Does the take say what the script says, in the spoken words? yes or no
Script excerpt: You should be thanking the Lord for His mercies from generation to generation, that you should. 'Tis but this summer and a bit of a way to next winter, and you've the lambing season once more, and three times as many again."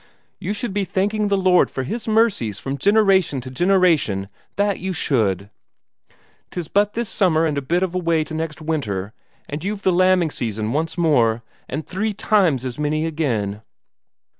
yes